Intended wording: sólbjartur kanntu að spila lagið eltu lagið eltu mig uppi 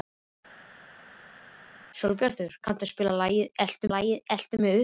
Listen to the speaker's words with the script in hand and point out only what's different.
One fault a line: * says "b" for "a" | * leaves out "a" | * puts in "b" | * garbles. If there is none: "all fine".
all fine